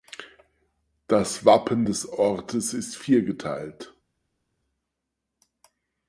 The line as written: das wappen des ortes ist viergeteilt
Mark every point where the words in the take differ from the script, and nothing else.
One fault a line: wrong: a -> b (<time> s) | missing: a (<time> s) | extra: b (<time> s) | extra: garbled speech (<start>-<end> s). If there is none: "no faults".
no faults